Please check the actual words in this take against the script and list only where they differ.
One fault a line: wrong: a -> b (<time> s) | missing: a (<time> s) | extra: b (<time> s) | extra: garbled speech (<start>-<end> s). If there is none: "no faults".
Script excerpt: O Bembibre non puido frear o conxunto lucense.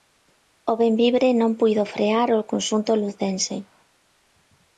no faults